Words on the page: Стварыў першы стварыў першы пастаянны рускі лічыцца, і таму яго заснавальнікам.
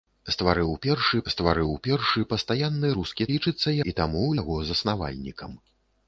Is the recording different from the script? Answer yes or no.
no